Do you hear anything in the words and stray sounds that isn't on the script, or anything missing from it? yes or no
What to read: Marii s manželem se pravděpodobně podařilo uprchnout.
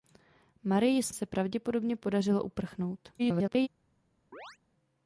yes